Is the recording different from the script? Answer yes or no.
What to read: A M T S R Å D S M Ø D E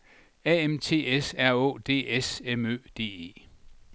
no